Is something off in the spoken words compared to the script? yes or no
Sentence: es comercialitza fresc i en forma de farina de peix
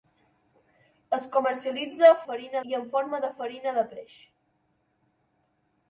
yes